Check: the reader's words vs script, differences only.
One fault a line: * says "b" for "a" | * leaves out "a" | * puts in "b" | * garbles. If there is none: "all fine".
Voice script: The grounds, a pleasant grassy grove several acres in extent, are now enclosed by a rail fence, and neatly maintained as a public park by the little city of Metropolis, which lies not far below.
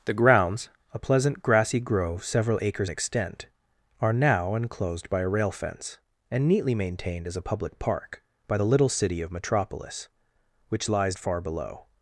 * leaves out "in"
* leaves out "not"